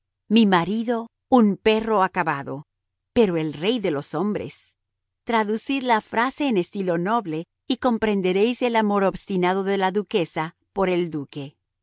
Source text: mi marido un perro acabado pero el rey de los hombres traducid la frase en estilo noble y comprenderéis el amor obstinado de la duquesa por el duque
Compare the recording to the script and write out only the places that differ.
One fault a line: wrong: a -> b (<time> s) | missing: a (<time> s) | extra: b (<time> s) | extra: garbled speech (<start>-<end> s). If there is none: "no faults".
no faults